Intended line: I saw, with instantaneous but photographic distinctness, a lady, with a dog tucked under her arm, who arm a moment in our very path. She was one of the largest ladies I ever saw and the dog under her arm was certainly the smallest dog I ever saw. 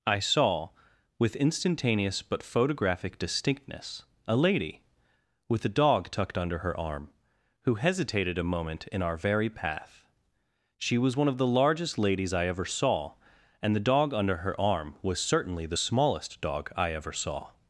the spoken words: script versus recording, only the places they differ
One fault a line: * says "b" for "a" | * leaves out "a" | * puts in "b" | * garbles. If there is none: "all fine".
* says "hesitated" for "arm"